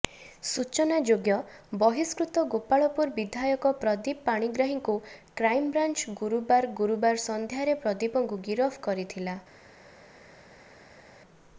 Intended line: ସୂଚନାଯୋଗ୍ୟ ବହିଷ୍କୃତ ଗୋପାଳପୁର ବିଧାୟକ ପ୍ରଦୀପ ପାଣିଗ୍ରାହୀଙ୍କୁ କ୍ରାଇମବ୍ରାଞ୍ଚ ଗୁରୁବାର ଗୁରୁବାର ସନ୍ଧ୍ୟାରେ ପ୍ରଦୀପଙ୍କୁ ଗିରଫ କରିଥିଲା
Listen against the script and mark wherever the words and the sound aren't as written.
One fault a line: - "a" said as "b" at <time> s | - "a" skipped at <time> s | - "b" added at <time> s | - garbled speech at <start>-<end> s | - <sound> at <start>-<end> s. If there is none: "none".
none